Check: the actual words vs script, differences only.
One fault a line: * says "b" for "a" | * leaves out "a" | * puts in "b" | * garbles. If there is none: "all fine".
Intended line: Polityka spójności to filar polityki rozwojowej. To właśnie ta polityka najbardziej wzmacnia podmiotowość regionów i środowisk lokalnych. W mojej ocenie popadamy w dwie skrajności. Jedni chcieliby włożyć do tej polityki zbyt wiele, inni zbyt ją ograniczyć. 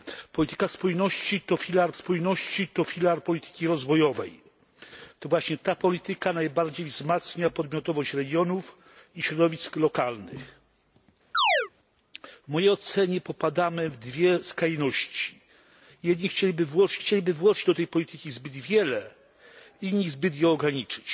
* puts in "spójności to filar"
* puts in "chcieliby włożyć"